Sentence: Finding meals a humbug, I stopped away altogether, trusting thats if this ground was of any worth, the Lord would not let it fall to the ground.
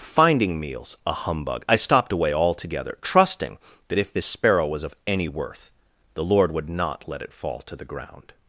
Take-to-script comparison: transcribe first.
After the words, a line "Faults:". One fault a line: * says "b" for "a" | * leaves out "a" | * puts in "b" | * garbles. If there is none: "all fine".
Finding meals a humbug, I stopped away altogether, trusting that if this sparrow was of any worth, the Lord would not let it fall to the ground.
Faults:
* says "that" for "thats"
* says "sparrow" for "ground"